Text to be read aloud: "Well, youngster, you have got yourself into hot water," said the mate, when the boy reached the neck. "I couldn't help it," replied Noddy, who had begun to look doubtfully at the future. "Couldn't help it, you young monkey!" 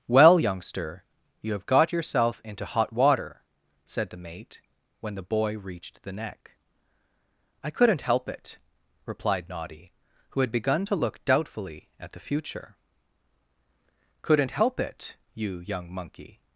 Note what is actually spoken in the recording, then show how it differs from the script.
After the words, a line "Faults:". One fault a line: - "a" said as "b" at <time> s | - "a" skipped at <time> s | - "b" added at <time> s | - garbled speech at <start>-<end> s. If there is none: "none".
"Well, youngster, you have got yourself into hot water," said the mate, when the boy reached the neck. "I couldn't help it," replied Noddy, who had begun to look doubtfully at the future. "Couldn't help it, you young monkey!"
Faults:
none